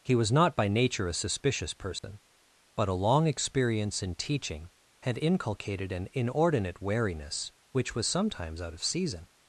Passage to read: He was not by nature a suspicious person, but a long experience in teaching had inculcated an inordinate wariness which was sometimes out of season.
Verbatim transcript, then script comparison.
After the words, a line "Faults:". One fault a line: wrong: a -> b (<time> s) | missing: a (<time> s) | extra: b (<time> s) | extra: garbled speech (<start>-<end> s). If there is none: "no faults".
He was not by nature a suspicious person, but a long experience in teaching had inculcated an inordinate wariness which was sometimes out of season.
Faults:
no faults